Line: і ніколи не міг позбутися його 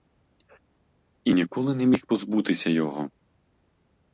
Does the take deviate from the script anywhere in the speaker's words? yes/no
no